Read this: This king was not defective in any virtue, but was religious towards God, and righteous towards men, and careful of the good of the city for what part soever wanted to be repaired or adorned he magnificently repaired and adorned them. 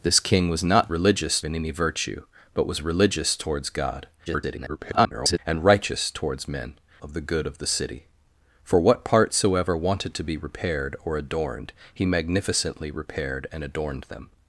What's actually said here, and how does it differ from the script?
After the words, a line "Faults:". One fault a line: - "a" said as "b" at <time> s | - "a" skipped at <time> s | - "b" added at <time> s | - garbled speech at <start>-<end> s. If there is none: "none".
This king was not religious in any virtue, but was religious towards God, [garbled] and righteous towards men, of the good of the city for what part soever wanted to be repaired or adorned he magnificently repaired and adorned them.
Faults:
- "defective" said as "religious" at 0.9 s
- garbled speech at 4.3-5.4 s
- "and careful" skipped at 6.7 s